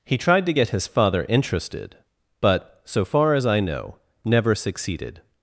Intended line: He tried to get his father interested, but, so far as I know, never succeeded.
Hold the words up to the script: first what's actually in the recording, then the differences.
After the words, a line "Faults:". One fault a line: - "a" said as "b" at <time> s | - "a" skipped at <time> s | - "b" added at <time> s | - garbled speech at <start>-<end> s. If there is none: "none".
He tried to get his father interested, but, so far as I know, never succeeded.
Faults:
none